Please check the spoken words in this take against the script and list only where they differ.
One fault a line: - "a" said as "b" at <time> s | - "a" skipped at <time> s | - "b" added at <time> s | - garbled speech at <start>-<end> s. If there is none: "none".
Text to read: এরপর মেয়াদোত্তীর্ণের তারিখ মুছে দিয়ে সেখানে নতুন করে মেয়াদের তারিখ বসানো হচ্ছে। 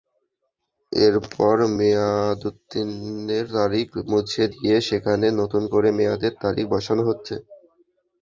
none